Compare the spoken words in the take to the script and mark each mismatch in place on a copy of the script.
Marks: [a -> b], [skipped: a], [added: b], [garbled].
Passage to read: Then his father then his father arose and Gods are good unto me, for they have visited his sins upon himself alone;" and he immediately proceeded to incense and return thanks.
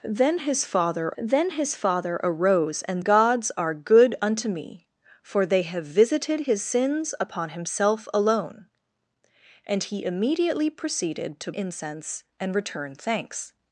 Then his father then his father arose and Gods are good unto me, for they have visited his sins upon himself alone;" and he immediately proceeded to incense and return thanks.